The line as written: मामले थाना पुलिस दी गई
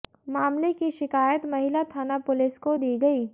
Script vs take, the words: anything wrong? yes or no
yes